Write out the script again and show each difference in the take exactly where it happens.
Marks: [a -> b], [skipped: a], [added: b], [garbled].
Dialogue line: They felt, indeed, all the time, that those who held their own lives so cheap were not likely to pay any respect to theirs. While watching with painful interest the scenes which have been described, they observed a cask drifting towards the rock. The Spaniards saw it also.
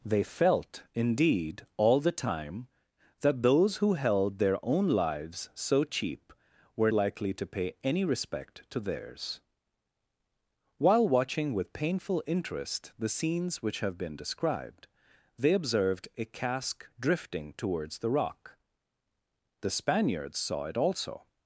They felt, indeed, all the time, that those who held their own lives so cheap were [skipped: not] likely to pay any respect to theirs. While watching with painful interest the scenes which have been described, they observed a cask drifting towards the rock. The Spaniards saw it also.